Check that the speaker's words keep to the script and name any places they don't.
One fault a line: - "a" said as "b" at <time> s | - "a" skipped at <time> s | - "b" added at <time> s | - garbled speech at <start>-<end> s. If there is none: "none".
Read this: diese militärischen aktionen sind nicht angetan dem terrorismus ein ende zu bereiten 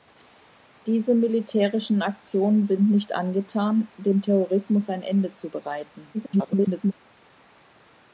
- garbled speech at 6.1-6.9 s